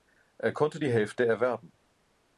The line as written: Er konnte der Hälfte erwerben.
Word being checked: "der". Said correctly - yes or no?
no